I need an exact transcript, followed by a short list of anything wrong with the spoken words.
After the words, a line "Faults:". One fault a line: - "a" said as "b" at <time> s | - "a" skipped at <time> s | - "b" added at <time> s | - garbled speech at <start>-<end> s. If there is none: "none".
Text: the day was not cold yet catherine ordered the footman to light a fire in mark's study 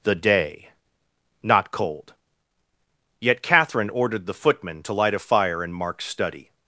the day not cold yet catherine ordered the footman to light a fire in mark's study
Faults:
- "was" skipped at 0.7 s